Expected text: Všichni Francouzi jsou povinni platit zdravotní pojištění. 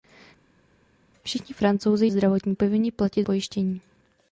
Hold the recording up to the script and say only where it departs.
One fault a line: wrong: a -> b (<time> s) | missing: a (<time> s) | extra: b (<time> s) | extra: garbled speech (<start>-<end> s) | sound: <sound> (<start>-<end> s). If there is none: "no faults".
wrong: jsou -> zdravotní (2.1 s)
missing: zdravotní (3.3 s)